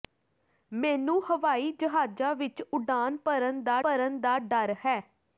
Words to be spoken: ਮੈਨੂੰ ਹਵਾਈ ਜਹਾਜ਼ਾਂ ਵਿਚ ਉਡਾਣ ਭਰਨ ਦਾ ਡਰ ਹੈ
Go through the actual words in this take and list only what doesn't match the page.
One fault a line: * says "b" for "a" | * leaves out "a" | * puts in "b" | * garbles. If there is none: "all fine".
* puts in "ਭਰਨ ਦਾ"